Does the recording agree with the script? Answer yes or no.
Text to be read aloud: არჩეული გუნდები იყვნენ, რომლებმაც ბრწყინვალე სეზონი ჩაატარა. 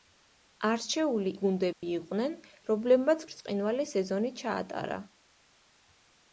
yes